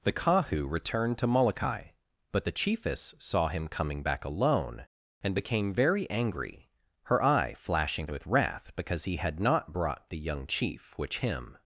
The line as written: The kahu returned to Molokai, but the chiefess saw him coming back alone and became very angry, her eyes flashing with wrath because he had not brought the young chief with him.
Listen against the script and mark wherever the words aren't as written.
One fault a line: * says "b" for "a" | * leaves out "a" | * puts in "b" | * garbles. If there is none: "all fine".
* says "eye" for "eyes"
* says "which" for "with"